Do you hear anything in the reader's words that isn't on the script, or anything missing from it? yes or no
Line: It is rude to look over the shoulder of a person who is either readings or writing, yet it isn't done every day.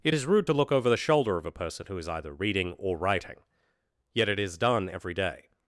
yes